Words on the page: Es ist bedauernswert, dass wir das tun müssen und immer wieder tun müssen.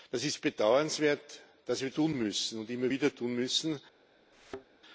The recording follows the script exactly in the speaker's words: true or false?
false